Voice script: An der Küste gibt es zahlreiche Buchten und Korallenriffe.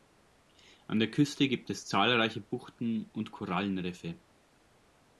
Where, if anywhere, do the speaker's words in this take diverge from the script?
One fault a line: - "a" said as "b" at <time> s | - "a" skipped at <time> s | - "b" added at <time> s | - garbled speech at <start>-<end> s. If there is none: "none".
none